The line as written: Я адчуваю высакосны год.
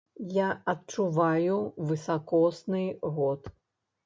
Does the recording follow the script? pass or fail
pass